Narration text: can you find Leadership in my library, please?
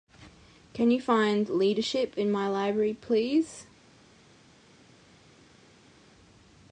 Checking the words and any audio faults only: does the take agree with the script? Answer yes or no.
yes